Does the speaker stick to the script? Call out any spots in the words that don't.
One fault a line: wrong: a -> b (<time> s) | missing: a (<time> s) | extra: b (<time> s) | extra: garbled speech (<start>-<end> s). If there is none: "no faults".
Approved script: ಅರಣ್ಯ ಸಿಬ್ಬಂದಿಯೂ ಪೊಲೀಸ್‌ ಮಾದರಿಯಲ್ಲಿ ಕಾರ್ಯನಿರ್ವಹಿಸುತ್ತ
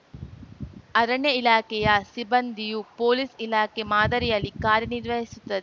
extra: ಇಲಾಖೆಯ (1.4 s)
extra: ಇಲಾಖೆ (3.5 s)